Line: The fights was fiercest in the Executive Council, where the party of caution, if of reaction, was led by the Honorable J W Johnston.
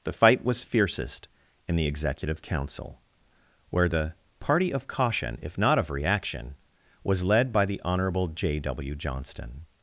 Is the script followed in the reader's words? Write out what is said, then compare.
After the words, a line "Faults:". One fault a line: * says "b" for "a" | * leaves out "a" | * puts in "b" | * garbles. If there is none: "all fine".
The fight was fiercest in the Executive Council, where the party of caution, if not of reaction, was led by the Honorable J W Johnston.
Faults:
* says "fight" for "fights"
* puts in "not"